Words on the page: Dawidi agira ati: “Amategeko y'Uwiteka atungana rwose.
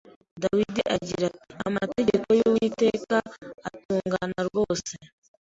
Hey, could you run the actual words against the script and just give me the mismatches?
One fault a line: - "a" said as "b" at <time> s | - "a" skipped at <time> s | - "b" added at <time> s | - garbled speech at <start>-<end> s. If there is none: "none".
none